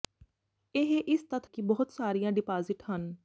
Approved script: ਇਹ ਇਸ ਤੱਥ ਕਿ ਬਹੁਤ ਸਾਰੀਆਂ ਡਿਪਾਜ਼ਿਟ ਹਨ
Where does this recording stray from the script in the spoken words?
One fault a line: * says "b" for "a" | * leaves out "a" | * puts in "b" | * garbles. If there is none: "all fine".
all fine